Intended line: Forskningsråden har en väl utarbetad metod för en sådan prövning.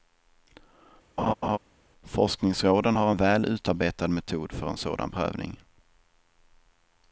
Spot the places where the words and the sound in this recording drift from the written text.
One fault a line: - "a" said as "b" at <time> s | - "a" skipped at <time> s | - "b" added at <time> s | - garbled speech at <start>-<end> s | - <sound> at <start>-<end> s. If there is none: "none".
- laugh at 1.2-1.6 s